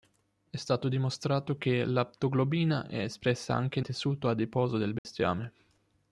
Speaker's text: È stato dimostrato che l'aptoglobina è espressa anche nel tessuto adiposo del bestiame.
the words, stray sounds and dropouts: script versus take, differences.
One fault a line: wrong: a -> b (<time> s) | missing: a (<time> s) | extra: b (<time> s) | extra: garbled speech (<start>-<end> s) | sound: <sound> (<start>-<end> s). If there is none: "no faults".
missing: nel (3.8 s)
sound: dropout (5.0-5.0 s)